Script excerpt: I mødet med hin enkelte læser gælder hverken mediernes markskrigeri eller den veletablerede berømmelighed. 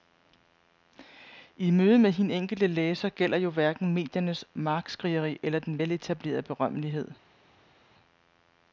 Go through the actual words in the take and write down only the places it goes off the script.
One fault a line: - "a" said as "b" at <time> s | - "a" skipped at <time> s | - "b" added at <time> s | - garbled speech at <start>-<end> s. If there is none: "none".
- "jo" added at 3.4 s